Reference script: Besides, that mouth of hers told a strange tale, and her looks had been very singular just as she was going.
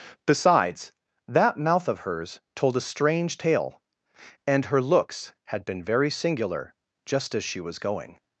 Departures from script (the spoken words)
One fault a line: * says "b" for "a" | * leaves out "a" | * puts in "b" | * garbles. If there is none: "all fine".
all fine